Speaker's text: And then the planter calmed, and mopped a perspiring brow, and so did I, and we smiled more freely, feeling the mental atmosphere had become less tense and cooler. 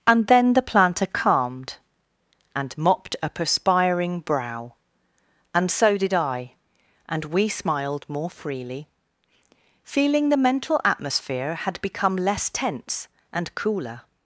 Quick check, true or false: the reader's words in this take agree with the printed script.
true